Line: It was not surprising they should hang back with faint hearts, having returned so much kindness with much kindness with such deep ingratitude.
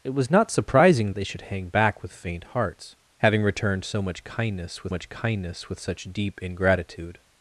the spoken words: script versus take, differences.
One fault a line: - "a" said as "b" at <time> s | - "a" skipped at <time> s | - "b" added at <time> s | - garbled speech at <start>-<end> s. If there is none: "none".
none